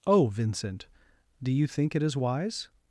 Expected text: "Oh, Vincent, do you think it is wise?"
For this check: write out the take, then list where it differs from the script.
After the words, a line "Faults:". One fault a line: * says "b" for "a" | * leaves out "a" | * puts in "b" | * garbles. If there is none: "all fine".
"Oh, Vincent, do you think it is wise?"
Faults:
all fine